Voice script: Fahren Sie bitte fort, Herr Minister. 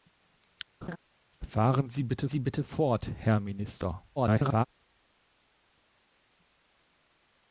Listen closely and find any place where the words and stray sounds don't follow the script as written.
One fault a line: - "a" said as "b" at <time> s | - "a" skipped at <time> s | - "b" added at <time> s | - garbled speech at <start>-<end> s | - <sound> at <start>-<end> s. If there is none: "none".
- laugh at 0.8-1.0 s
- "Sie bitte" added at 2.3 s
- garbled speech at 4.2-4.6 s